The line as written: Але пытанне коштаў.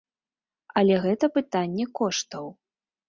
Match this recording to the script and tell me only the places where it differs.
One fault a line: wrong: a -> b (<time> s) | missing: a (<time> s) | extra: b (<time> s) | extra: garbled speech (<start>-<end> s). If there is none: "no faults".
extra: гэта (1.0 s)